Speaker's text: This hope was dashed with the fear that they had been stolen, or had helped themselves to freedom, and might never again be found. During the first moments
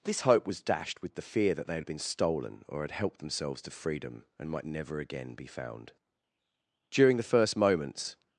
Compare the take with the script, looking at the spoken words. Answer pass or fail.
pass